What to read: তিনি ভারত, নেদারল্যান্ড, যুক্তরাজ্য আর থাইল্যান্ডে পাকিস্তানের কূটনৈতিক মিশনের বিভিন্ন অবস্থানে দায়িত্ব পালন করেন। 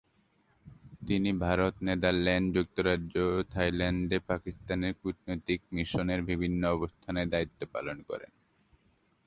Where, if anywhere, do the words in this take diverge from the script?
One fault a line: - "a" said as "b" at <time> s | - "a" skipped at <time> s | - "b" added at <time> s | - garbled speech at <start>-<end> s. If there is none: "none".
- "আর" said as "ও" at 3.3 s